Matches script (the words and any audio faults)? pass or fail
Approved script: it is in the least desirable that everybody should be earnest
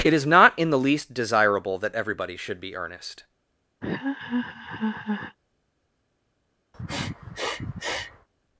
fail